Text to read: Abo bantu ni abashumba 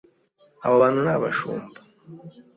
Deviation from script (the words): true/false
false